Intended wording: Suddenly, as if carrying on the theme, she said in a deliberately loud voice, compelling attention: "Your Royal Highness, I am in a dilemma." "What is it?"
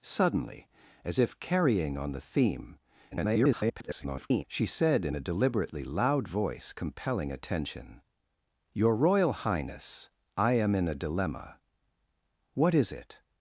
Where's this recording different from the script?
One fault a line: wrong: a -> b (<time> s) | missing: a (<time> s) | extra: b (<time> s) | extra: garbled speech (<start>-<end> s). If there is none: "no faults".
extra: garbled speech (3.1-4.4 s)